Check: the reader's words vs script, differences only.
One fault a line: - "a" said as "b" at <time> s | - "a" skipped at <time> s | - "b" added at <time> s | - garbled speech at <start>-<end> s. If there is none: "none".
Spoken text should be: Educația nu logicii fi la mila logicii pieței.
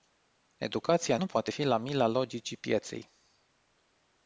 - "logicii" said as "poate" at 1.3 s